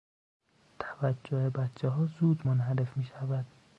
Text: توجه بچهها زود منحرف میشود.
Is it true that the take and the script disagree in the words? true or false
false